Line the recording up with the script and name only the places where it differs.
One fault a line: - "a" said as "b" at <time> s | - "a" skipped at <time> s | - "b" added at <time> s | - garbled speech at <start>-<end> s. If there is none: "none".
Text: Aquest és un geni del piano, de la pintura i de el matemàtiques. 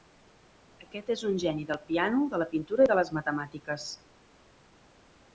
- "el" said as "les" at 3.0 s